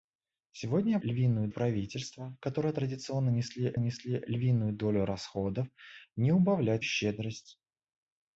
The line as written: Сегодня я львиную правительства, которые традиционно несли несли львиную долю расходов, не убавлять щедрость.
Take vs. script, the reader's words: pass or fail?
pass